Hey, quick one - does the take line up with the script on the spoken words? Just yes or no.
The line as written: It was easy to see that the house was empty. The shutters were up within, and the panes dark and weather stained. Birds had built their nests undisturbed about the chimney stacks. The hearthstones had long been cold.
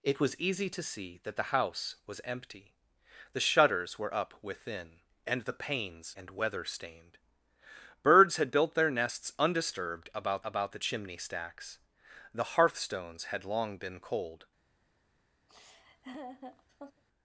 no